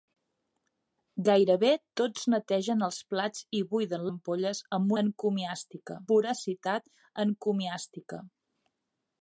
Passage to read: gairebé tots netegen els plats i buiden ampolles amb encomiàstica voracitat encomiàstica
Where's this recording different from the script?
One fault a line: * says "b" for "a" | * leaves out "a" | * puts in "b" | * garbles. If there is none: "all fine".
all fine